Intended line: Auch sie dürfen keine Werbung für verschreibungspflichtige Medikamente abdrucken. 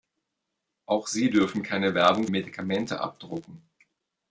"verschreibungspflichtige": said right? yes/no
no